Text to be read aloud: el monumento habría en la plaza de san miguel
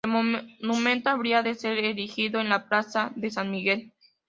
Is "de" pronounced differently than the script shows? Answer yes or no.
no